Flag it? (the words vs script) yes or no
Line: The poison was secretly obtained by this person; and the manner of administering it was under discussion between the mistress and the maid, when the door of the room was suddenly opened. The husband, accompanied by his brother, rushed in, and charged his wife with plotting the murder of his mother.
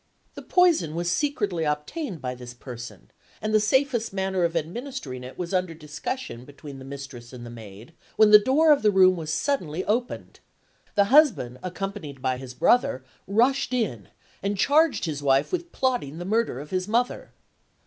yes